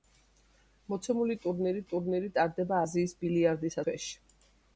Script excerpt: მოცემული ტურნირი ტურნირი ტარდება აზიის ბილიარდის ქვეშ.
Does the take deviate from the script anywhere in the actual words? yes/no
no